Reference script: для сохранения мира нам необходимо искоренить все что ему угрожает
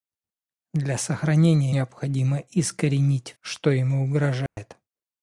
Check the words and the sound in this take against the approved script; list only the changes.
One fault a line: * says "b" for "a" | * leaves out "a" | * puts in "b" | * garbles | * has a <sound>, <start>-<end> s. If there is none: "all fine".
* leaves out "мира нам"
* leaves out "все"
* has a dropout, 4.5-4.6 s